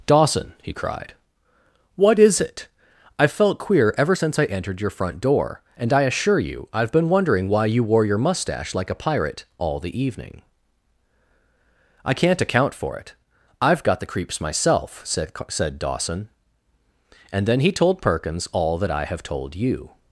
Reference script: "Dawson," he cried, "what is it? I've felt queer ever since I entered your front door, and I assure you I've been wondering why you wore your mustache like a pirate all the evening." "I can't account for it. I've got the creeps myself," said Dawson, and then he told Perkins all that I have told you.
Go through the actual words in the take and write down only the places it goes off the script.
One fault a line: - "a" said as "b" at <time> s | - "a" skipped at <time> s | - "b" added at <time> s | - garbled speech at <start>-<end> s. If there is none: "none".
- "said" added at 15.5 s